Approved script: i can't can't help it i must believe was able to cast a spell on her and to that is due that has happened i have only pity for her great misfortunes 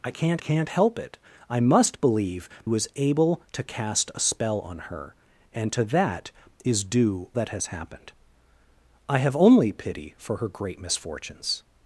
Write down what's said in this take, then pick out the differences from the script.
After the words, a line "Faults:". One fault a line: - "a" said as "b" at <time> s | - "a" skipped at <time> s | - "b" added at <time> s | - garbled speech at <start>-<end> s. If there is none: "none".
i can't can't help it i must believe was able to cast a spell on her and to that is due that has happened i have only pity for her great misfortunes
Faults:
none